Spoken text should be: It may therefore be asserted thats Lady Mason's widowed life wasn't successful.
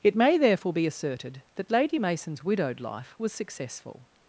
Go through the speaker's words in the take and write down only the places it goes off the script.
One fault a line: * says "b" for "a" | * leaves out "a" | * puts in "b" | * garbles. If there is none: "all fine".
* says "that" for "thats"
* says "was" for "wasn't"